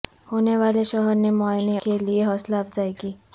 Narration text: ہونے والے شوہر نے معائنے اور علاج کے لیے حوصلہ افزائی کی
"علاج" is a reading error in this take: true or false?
true